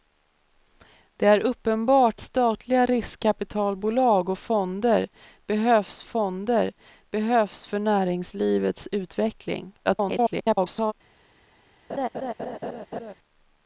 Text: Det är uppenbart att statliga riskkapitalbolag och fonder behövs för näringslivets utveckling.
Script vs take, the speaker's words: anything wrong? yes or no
yes